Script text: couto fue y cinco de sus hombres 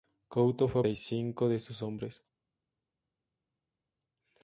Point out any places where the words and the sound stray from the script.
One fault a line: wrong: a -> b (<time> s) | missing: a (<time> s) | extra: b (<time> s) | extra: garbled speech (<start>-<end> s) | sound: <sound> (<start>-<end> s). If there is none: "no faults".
no faults